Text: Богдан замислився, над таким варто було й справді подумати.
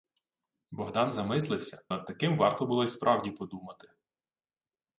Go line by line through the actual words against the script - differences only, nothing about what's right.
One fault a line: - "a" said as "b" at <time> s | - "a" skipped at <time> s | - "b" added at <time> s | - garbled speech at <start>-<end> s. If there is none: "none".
none